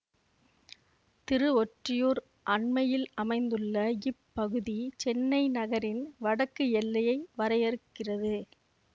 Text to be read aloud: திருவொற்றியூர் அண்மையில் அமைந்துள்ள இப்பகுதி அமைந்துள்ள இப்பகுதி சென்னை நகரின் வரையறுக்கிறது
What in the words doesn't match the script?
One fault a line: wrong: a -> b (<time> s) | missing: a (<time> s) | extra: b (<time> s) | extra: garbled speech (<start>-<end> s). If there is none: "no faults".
wrong: அமைந்துள்ள இப்பகுதி சென்னை நகரின் -> சென்னை நகரின் வடக்கு எல்லையை (5.0 s)